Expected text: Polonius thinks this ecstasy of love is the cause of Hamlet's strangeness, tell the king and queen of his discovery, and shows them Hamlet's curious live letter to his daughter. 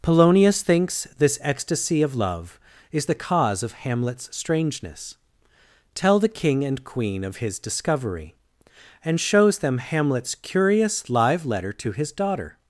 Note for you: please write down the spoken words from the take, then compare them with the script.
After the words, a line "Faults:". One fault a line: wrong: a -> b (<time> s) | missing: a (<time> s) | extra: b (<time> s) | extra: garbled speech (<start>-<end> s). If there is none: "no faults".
Polonius thinks this ecstasy of love is the cause of Hamlet's strangeness, tell the king and queen of his discovery, and shows them Hamlet's curious live letter to his daughter.
Faults:
no faults